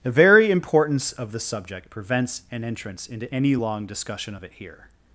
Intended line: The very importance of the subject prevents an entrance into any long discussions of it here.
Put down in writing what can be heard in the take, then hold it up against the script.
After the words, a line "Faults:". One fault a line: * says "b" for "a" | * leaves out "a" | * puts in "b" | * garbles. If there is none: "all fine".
The very importance of the subject prevents an entrance into any long discussion of it here.
Faults:
* says "discussion" for "discussions"